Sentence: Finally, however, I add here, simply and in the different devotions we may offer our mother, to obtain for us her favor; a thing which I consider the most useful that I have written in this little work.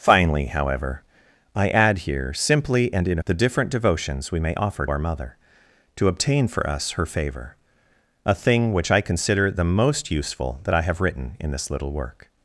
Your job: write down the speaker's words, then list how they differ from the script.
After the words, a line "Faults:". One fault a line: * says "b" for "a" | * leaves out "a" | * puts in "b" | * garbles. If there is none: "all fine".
Finally, however, I add here, simply and in the different devotions we may offer our mother, to obtain for us her favor; a thing which I consider the most useful that I have written in this little work.
Faults:
all fine